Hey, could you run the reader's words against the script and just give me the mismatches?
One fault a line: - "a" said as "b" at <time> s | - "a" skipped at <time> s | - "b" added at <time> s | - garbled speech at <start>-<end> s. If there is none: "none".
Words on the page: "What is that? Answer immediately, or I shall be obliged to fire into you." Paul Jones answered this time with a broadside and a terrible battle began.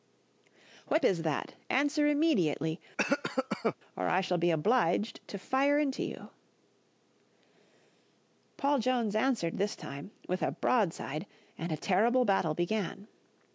none